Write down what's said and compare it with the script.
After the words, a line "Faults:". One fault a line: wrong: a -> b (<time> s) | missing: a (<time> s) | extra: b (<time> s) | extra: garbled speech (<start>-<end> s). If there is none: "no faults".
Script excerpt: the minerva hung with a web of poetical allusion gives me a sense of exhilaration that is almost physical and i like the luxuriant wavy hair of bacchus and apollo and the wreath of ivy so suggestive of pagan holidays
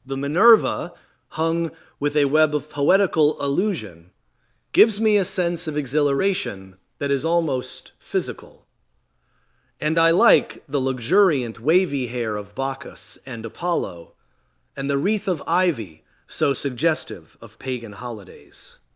the minerva hung with a web of poetical allusion gives me a sense of exhilaration that is almost physical and i like the luxuriant wavy hair of bacchus and apollo and the wreath of ivy so suggestive of pagan holidays
Faults:
no faults